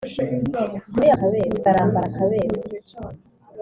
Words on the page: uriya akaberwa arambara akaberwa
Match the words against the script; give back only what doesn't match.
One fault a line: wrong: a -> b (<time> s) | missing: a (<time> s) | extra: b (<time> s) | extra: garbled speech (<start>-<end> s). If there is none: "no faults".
no faults